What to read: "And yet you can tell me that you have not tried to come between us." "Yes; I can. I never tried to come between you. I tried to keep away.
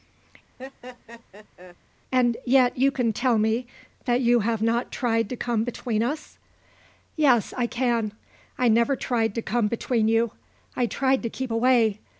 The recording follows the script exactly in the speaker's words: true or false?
true